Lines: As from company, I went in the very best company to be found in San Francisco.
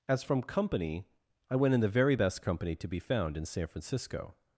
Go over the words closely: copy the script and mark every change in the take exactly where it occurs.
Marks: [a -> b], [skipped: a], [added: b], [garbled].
As from company, I went in the very best company to be found in San Francisco.